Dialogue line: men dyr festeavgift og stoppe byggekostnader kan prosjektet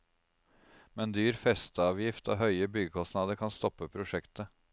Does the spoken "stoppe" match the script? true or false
false